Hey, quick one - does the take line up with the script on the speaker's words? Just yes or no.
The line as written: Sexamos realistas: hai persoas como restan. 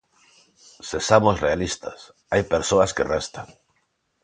no